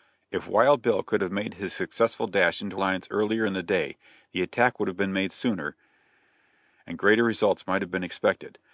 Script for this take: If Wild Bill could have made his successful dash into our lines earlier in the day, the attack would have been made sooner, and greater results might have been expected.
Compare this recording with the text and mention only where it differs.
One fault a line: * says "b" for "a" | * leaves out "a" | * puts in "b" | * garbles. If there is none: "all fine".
* leaves out "our"